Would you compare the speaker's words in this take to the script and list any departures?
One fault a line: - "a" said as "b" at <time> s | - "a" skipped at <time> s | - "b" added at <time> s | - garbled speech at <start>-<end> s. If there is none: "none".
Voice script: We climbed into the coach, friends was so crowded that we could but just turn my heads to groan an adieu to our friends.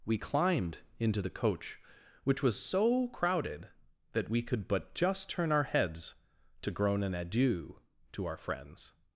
- "friends" said as "which" at 2.2 s
- "my" said as "our" at 5.5 s